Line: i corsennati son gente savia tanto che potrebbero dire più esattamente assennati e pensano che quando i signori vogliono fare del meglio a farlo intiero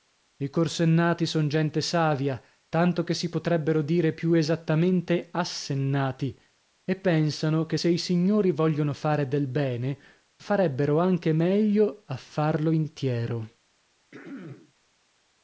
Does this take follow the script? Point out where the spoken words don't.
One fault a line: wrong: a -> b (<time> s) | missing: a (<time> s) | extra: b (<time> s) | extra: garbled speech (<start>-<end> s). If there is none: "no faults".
extra: si (3.1 s)
wrong: quando -> se (7.7 s)
extra: bene farebbero anche (9.5 s)